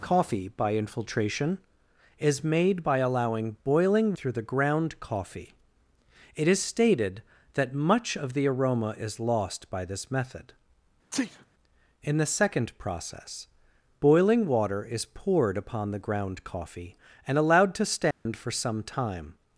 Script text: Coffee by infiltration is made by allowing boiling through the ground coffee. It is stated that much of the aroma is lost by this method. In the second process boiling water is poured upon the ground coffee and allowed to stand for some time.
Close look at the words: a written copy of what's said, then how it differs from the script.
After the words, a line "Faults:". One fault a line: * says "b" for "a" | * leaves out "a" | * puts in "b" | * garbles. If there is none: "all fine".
Coffee by infiltration is made by allowing boiling through the ground coffee. It is stated that much of the aroma is lost by this method. In the second process boiling water is poured upon the ground coffee and allowed to stand for some time.
Faults:
all fine